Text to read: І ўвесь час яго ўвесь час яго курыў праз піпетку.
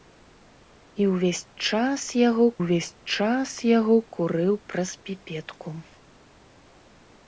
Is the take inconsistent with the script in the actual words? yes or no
no